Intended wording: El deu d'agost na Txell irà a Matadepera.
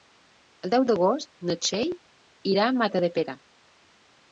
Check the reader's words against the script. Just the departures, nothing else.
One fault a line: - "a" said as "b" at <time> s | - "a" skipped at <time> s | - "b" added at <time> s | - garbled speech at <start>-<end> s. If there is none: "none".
none